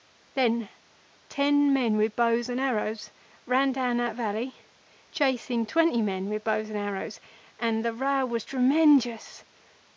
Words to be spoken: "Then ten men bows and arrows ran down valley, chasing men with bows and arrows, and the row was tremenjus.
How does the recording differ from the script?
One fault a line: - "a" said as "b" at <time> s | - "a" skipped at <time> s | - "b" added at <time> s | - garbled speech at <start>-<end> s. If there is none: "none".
- "with" added at 1.9 s
- "that" added at 4.0 s
- "twenty" added at 5.6 s